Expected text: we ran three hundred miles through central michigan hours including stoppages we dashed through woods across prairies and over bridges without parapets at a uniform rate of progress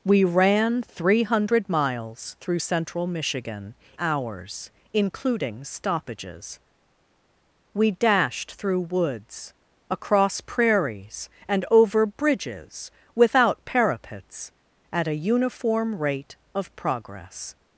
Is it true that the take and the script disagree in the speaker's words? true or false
false